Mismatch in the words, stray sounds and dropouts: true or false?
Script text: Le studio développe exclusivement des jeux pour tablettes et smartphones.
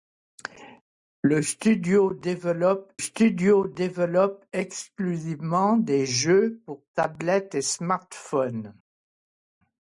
true